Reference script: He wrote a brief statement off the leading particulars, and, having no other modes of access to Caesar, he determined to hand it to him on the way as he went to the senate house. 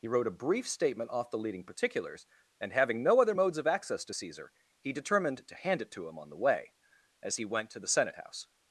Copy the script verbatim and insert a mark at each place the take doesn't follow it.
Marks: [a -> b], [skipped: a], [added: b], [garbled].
He wrote a brief statement off the leading particulars, and, having no other modes of access to Caesar, he determined to hand it to him on the way as he went to the senate house.